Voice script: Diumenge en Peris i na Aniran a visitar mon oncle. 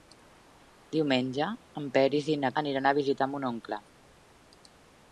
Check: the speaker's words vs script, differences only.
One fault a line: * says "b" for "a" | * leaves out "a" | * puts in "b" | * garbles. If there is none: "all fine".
all fine